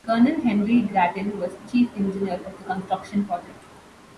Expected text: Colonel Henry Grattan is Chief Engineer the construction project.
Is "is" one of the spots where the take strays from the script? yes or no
yes